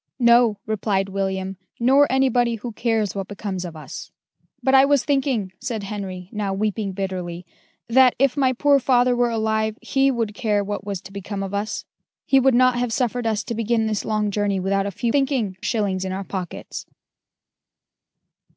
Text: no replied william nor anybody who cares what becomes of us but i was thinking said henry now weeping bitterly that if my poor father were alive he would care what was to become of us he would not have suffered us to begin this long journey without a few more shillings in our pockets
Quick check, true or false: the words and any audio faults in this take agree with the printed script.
false